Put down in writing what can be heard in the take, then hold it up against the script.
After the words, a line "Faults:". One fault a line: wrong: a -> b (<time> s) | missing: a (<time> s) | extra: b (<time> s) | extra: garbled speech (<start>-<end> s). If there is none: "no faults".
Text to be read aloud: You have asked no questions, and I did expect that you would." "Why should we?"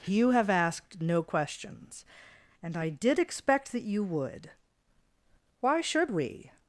You have asked no questions, and I did expect that you would." "Why should we?"
Faults:
no faults